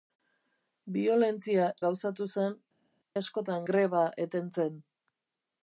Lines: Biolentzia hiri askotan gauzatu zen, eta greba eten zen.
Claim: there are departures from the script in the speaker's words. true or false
true